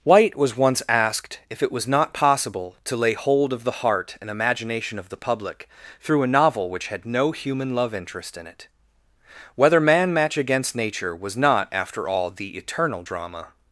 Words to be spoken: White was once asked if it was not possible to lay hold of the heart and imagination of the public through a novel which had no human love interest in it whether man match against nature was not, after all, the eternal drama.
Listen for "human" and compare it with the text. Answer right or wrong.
right